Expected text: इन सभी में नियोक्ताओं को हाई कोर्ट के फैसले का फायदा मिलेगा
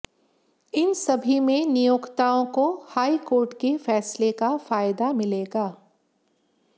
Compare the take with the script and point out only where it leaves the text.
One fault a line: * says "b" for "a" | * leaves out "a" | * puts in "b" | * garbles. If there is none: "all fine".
all fine